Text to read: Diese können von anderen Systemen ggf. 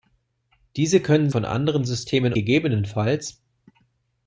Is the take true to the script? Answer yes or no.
yes